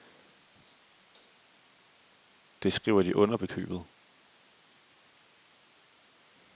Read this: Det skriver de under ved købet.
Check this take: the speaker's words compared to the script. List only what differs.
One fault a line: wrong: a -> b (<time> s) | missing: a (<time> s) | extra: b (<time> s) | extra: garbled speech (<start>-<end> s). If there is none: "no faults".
no faults